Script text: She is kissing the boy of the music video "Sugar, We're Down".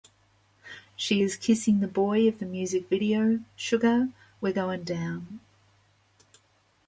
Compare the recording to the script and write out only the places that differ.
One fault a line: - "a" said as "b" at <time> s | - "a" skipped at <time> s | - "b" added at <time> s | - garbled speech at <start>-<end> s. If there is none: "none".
- "Goin" added at 4.5 s